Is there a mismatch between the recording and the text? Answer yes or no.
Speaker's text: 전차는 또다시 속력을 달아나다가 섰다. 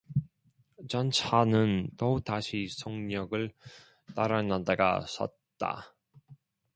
no